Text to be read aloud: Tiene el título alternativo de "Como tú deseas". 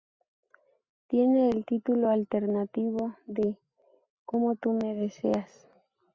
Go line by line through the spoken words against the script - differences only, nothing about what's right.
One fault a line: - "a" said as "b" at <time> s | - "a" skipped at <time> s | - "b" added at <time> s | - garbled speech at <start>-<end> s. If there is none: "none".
- "me" added at 4.7 s